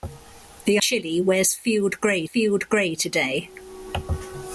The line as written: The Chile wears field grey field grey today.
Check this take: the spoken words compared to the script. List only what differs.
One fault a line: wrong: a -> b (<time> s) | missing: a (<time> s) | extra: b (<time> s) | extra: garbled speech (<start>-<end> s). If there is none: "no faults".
no faults